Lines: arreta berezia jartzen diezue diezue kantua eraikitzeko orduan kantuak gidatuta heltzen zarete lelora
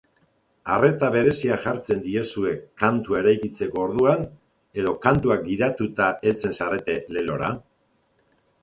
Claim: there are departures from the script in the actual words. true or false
true